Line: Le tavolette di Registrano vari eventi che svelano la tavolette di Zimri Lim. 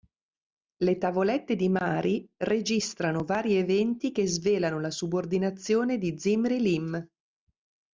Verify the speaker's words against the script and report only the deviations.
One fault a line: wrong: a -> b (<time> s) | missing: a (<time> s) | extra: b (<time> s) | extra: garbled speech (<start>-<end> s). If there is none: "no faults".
extra: Mari (1.7 s)
wrong: tavolette -> subordinazione (4.9 s)